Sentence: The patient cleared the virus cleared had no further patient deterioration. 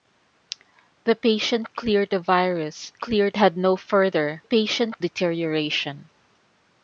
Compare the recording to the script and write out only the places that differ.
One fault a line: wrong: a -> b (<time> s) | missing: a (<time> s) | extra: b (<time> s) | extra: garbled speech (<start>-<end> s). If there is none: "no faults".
no faults